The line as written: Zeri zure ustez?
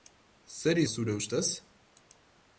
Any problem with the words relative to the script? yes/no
no